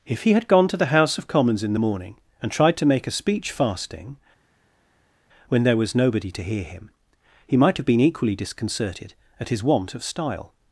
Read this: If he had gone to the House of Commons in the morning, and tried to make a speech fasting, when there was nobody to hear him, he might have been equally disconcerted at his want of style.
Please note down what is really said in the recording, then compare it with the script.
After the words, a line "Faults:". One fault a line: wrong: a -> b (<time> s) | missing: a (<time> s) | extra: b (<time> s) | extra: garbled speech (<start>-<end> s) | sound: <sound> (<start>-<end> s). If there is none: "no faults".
If he had gone to the House of Commons in the morning, and tried to make a speech fasting, when there was nobody to hear him, he might have been equally disconcerted at his want of style.
Faults:
no faults